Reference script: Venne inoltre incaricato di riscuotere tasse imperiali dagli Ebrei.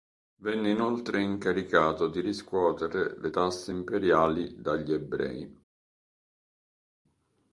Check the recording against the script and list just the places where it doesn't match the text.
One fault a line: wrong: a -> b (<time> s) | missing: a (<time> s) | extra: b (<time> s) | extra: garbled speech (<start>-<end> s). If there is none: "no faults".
extra: le (3.2 s)